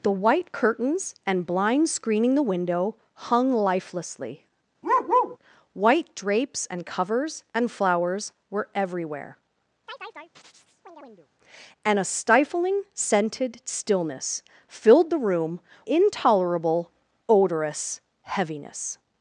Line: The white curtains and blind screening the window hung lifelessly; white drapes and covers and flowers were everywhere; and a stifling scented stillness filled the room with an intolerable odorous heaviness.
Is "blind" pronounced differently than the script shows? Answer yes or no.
no